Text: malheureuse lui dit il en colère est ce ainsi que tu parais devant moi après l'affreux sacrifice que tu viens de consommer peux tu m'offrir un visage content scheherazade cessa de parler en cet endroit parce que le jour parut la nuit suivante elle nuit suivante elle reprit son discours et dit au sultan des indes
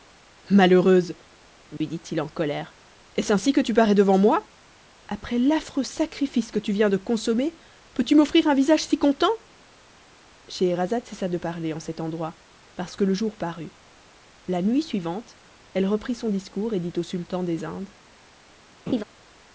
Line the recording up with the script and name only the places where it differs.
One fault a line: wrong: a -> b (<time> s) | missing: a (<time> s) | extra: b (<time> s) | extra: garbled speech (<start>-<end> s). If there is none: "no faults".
extra: si (8.8 s)
missing: nuit suivante elle (15.9 s)